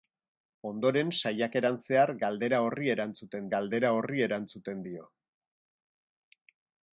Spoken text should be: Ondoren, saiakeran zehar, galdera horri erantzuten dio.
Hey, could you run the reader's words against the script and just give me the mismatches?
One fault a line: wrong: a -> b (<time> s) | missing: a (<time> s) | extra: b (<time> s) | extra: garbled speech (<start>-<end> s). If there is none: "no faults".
extra: galdera horri erantzuten (3.6 s)